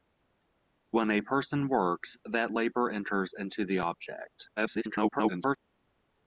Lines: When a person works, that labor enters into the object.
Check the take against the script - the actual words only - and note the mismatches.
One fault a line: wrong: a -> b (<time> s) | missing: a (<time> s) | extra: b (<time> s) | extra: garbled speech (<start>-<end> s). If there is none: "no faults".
extra: garbled speech (4.6-5.6 s)